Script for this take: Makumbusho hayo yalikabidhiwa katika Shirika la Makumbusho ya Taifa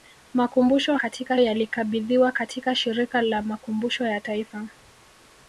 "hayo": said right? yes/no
no